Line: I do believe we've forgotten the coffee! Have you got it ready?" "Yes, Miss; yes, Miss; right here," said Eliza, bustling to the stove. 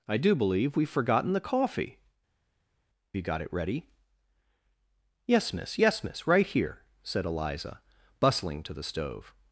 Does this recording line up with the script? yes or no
no